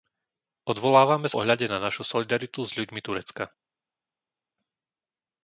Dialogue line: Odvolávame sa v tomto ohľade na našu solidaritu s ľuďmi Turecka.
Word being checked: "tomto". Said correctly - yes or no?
no